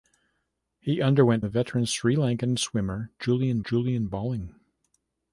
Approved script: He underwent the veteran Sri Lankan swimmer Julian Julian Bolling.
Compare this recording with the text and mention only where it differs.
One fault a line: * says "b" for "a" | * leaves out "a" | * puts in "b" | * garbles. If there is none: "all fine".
all fine